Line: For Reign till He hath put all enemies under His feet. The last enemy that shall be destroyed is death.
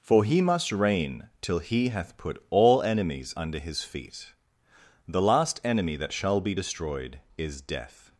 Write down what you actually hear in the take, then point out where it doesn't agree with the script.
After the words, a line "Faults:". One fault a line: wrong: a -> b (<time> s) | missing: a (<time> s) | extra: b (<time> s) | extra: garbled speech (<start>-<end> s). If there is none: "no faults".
For He must reign till He hath put all enemies under His feet. The last enemy that shall be destroyed is death.
Faults:
extra: He must (0.2 s)